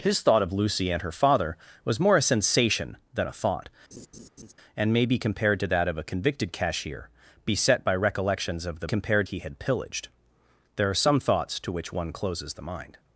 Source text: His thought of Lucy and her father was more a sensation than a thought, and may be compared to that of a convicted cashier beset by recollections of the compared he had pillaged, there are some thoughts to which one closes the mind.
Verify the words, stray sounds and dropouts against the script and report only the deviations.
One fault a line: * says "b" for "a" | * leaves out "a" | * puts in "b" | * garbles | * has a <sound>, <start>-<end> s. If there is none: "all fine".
* has a laugh, 3.9-4.5 s